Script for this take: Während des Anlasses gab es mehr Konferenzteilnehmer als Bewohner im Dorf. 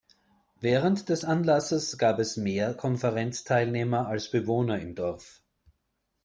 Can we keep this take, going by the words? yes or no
yes